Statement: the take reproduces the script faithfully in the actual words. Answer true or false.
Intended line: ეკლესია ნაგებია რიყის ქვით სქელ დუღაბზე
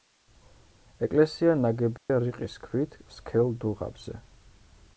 true